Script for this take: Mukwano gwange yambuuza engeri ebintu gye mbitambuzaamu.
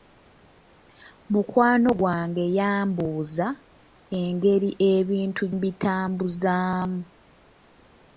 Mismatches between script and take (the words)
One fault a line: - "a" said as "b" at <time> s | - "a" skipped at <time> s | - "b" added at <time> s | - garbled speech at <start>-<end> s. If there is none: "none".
- "gye" skipped at 5.4 s